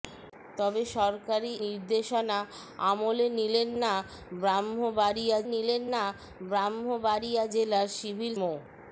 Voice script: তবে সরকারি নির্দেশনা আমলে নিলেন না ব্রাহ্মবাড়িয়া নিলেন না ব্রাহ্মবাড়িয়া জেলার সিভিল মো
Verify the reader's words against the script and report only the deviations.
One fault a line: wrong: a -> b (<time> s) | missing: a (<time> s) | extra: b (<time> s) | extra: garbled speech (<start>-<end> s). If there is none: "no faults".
no faults